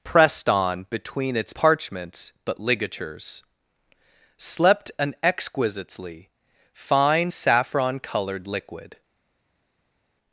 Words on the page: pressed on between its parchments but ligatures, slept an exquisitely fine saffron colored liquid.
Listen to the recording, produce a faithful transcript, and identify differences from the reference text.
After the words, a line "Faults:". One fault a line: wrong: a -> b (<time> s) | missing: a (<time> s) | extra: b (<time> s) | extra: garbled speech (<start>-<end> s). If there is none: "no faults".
pressed on between its parchments but ligatures, slept an exquisitely fine saffron colored liquid.
Faults:
no faults